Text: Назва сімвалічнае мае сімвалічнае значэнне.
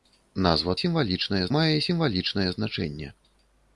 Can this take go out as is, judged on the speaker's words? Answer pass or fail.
pass